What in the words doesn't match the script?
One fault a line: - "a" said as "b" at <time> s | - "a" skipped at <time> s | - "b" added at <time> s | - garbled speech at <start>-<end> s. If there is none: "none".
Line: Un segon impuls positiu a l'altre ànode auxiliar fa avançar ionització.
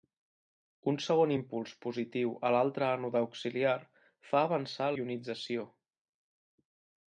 none